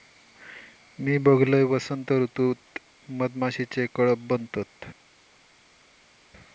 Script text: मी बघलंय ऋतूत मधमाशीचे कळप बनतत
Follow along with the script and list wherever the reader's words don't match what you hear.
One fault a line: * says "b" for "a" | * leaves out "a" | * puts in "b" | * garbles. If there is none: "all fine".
* puts in "वसंत"